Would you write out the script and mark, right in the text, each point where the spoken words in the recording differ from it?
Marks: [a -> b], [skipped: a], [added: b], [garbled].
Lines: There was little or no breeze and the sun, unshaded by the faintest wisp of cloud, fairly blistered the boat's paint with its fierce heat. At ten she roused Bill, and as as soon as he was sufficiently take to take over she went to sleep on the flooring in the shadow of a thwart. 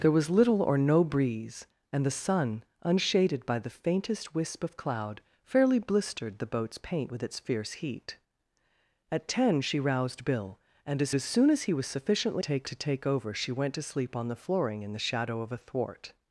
There was little or no breeze and the sun, unshaded by the faintest wisp of cloud, fairly blistered the boat's paint with its fierce heat. At ten she roused Bill, and as as soon as he was sufficiently take to take over she went to sleep on the flooring in the shadow of a thwart.